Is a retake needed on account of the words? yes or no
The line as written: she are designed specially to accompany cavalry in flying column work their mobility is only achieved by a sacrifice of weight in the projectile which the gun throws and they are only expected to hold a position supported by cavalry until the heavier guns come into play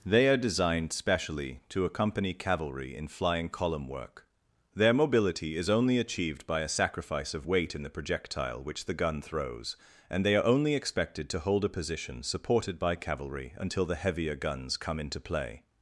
yes